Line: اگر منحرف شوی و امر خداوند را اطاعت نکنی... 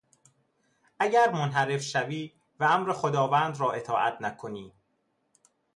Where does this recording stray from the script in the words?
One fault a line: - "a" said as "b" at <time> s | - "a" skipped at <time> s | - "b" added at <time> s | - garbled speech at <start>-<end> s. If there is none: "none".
none